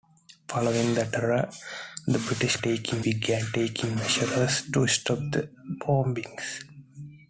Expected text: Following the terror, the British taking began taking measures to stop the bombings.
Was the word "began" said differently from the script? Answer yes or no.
no